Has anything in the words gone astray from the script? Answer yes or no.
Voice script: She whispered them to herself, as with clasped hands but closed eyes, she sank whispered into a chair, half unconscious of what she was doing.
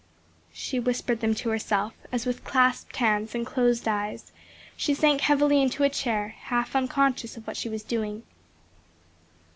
yes